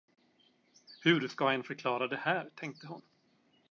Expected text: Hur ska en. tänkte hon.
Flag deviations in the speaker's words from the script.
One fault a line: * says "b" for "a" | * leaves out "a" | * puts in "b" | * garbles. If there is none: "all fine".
* puts in "förklara det här"